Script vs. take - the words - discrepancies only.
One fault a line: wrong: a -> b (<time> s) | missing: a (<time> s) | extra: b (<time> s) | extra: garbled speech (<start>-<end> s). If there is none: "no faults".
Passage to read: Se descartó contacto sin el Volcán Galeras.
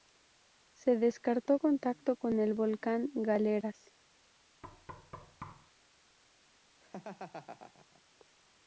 wrong: sin -> con (2.1 s)